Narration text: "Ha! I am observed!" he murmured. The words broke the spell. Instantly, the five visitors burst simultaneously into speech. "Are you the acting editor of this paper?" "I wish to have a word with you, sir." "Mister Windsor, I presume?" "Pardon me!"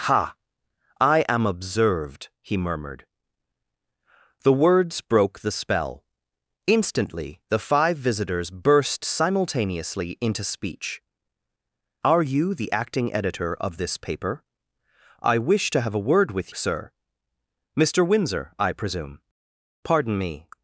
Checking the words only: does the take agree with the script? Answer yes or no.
no